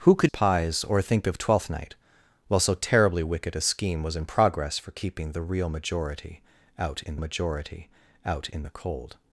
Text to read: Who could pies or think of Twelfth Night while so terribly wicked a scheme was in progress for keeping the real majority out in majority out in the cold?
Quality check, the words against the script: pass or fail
pass